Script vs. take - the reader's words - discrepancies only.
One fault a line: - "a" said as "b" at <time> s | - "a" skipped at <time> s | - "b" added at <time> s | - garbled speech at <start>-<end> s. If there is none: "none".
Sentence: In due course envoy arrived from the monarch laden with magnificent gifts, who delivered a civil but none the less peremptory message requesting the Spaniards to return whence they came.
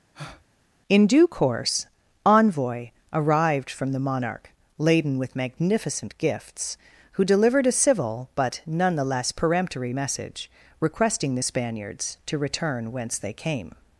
none